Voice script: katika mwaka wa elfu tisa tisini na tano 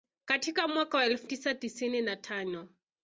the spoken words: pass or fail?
pass